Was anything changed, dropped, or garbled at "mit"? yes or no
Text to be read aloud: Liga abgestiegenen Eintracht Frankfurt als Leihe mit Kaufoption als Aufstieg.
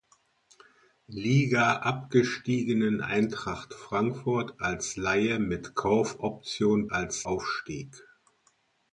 no